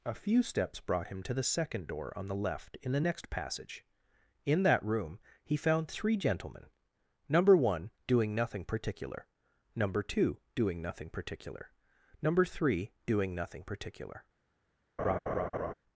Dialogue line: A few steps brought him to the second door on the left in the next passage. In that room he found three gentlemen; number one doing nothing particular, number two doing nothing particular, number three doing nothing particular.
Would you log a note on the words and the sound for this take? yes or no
yes